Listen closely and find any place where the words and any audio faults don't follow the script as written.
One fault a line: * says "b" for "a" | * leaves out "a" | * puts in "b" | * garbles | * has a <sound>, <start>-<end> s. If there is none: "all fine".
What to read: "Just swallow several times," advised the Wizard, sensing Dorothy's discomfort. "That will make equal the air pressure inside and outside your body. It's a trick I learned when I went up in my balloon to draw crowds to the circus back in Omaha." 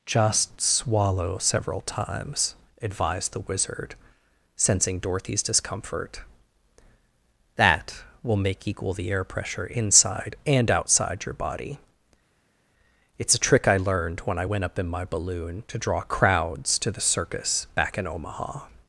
all fine